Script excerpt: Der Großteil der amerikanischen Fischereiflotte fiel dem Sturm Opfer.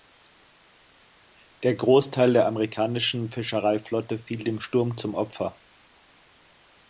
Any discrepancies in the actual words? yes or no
yes